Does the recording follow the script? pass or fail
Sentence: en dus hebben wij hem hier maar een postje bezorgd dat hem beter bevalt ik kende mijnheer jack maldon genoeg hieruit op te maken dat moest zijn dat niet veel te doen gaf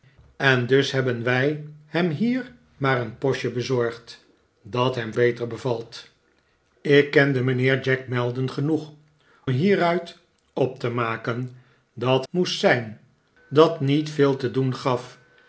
pass